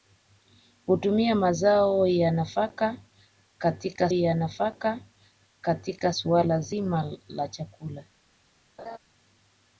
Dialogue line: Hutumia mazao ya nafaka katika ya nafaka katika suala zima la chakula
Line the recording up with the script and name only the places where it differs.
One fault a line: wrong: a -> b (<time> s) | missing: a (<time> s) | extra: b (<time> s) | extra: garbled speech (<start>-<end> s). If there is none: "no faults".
no faults